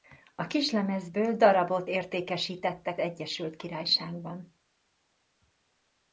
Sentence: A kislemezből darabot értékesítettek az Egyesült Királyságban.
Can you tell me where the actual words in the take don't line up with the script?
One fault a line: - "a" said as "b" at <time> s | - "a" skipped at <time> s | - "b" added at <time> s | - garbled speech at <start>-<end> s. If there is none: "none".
- "az" skipped at 3.0 s